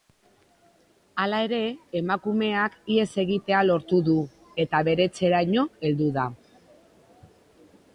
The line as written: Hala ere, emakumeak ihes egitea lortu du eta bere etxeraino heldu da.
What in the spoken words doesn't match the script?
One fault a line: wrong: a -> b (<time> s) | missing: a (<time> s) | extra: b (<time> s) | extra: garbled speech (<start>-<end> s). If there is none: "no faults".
no faults